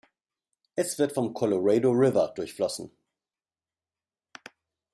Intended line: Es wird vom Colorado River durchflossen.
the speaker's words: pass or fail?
pass